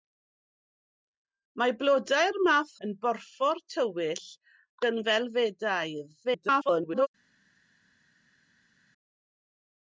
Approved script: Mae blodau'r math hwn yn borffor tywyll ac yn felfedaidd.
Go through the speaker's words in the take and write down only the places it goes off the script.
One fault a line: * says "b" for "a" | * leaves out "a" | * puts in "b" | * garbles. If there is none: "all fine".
* leaves out "hwn"
* leaves out "ac"
* garbles